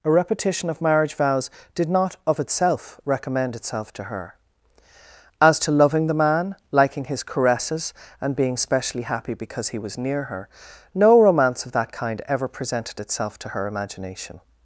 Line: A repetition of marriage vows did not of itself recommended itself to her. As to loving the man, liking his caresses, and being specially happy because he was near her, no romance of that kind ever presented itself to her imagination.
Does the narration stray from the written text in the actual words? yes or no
yes